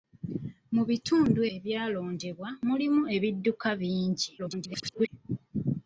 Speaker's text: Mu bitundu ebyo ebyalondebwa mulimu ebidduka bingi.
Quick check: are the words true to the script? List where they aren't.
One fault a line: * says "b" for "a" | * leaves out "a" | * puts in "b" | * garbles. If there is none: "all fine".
* leaves out "ebyo"
* garbles